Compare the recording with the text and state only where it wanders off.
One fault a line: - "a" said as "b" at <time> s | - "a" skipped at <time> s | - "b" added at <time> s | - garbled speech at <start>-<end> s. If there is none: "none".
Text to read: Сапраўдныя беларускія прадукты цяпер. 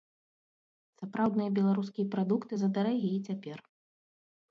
- "задарагія" added at 2.6 s